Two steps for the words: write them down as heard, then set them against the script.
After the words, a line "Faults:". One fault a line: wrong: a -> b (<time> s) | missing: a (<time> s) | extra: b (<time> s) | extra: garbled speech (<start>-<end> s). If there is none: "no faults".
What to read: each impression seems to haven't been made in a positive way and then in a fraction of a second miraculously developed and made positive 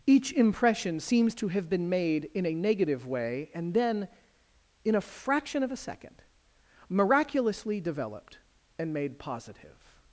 each impression seems to have been made in a negative way and then in a fraction of a second miraculously developed and made positive
Faults:
wrong: haven't -> have (1.5 s)
wrong: positive -> negative (2.5 s)